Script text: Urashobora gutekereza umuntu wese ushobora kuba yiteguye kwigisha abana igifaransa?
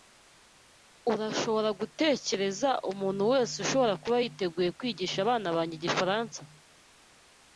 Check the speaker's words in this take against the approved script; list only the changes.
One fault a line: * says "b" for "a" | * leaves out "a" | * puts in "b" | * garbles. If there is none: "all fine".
* puts in "banjye"